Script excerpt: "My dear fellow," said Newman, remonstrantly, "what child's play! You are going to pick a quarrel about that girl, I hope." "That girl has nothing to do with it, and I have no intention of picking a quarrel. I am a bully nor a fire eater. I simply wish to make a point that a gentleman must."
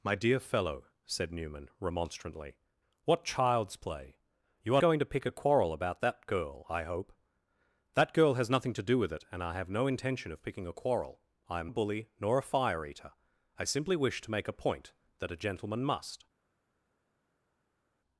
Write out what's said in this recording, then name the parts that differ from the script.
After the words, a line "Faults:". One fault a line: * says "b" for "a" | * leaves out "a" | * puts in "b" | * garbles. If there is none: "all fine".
"My dear fellow," said Newman, remonstrantly, "what child's play! You are going to pick a quarrel about that girl, I hope." "That girl has nothing to do with it, and I have no intention of picking a quarrel. I am a bully nor a fire eater. I simply wish to make a point that a gentleman must."
Faults:
all fine